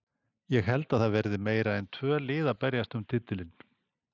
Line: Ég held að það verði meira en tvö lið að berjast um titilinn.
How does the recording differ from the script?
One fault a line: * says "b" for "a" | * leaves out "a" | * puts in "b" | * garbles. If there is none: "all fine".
all fine